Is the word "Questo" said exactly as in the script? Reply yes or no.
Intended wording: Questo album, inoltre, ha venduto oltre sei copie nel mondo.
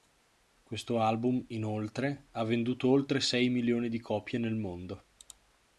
yes